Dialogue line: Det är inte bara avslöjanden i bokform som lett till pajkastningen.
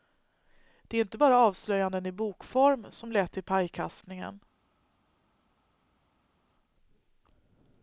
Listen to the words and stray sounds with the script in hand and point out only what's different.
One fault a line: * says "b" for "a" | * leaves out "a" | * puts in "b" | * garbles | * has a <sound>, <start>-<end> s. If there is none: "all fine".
all fine